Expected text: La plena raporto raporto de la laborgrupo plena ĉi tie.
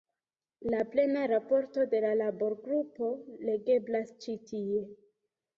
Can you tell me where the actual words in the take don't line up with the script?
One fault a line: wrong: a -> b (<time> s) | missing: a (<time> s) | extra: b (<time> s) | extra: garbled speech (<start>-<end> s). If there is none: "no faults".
missing: raporto (1.8 s)
wrong: plena -> legeblas (3.5 s)